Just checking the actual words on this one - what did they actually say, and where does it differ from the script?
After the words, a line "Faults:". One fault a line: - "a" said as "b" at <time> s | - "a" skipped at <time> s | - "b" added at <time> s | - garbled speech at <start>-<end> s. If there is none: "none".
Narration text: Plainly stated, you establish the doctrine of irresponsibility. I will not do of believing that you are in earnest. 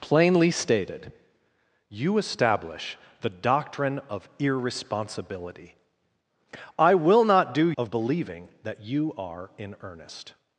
Plainly stated, you establish the doctrine of irresponsibility. I will not do of believing that you are in earnest.
Faults:
none